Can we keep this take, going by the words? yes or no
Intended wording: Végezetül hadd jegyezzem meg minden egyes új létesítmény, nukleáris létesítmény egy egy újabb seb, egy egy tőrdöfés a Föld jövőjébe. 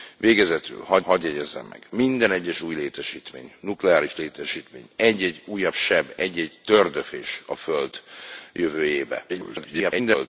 no